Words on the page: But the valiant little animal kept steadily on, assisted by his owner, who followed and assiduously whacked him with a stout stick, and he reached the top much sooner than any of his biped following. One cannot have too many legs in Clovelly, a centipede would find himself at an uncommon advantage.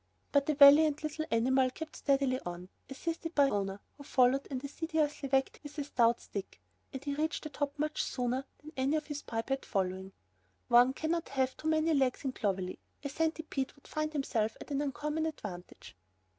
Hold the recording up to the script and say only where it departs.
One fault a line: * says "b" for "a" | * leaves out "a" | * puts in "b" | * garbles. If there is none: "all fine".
* leaves out "his"
* leaves out "him"